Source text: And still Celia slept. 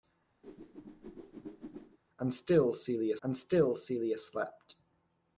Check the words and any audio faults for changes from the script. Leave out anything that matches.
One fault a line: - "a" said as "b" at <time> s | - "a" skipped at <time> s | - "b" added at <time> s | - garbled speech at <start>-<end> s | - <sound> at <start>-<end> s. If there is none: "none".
- whoosh at 0.4-2.0 s
- "and still Celia" added at 3.2 s